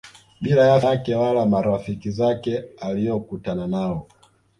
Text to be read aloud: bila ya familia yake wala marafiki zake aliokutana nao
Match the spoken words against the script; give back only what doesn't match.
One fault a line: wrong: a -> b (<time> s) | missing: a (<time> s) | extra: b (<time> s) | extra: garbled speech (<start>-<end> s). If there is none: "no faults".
missing: familia (0.8 s)